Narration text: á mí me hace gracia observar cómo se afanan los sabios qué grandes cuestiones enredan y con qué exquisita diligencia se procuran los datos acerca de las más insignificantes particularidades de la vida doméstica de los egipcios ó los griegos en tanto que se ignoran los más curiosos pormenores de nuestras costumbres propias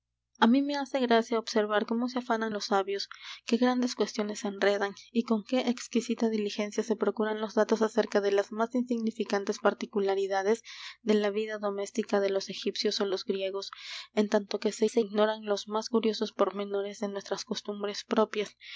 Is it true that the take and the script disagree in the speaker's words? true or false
true